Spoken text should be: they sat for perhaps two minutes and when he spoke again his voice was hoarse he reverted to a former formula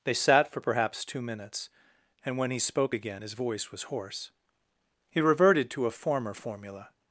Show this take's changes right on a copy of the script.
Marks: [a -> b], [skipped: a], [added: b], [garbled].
they sat for perhaps two minutes and when he spoke again his voice was hoarse he reverted to a former formula